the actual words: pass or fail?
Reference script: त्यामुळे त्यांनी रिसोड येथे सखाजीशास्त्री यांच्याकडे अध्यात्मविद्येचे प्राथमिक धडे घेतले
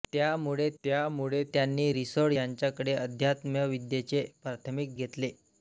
fail